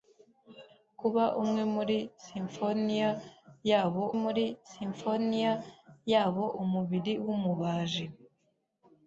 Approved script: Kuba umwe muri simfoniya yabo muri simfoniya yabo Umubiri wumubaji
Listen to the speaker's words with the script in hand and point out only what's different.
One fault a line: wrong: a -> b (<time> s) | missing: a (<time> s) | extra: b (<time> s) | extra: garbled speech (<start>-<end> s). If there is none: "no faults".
no faults